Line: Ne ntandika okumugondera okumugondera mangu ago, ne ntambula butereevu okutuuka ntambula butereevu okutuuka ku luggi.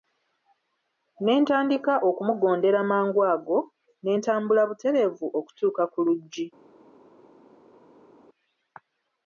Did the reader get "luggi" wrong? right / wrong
right